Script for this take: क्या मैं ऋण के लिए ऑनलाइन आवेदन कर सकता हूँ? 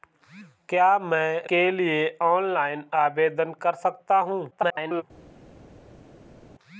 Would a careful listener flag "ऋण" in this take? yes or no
yes